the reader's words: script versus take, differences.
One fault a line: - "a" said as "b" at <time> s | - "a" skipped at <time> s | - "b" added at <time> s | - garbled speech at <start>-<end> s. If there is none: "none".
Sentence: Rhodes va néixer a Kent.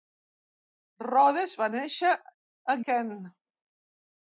none